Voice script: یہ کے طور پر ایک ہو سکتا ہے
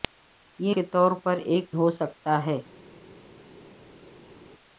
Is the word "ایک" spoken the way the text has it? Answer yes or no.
yes